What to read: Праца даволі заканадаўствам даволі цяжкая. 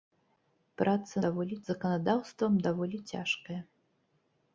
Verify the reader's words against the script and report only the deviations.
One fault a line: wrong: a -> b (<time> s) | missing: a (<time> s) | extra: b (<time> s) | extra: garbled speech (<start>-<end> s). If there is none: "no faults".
no faults